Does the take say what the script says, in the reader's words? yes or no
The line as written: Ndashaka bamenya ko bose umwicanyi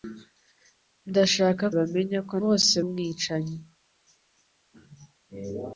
yes